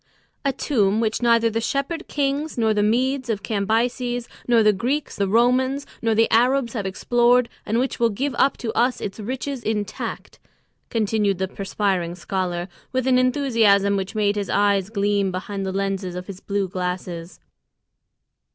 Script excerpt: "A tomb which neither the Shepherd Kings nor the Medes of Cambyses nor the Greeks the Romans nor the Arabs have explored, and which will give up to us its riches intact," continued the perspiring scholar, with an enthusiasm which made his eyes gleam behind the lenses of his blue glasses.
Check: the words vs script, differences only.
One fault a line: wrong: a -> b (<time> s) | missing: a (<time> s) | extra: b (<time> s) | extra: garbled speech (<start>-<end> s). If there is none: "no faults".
no faults